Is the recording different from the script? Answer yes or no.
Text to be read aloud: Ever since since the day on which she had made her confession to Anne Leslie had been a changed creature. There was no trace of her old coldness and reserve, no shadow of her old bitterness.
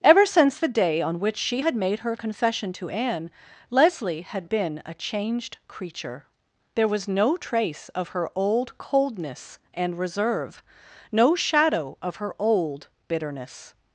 yes